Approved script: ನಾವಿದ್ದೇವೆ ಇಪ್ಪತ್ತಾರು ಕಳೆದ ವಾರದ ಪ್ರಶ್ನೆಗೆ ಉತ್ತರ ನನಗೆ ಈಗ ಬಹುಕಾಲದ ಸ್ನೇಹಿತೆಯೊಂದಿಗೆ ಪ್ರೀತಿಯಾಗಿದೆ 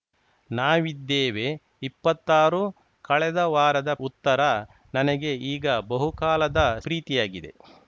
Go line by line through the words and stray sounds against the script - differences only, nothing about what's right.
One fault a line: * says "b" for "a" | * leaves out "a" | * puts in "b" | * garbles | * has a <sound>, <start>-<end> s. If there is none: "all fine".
* leaves out "ಪ್ರಶ್ನೆಗೆ"
* leaves out "ಸ್ನೇಹಿತೆಯೊಂದಿಗೆ"